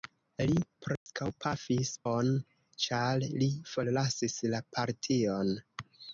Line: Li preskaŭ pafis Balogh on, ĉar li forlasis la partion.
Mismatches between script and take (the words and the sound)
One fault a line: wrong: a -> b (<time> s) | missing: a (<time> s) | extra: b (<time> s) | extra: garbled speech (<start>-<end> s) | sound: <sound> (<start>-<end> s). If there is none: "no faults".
sound: dropout (1.0-1.1 s)
missing: Balogh (1.9 s)